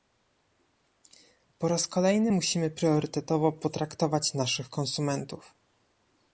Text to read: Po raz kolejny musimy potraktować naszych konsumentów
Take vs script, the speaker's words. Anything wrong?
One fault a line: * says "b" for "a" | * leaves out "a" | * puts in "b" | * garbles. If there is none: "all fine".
* puts in "priorytetowo"